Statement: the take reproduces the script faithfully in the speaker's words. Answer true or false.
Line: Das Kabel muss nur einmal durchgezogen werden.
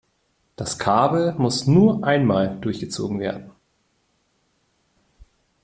true